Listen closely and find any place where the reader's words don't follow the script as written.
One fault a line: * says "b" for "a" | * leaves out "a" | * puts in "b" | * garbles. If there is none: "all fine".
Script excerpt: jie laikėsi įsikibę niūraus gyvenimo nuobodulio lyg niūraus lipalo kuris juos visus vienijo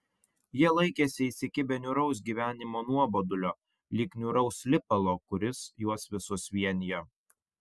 all fine